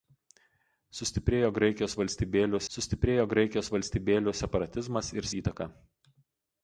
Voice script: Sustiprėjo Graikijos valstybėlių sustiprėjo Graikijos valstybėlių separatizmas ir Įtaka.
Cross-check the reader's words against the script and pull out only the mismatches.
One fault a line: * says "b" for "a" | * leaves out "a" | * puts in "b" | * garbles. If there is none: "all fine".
all fine